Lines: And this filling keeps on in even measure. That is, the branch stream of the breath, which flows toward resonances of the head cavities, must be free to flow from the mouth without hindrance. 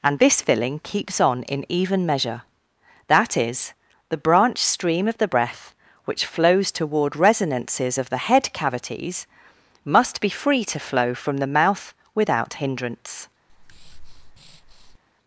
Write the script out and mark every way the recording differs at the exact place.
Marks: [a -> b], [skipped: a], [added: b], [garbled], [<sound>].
And this filling keeps on in even measure. That is, the branch stream of the breath, which flows toward resonances of the head cavities, must be free to flow from the mouth without hindrance. [breath]